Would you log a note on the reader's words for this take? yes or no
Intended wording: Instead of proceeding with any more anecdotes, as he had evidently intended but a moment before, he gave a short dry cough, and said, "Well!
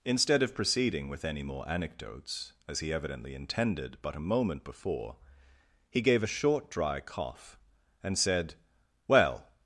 yes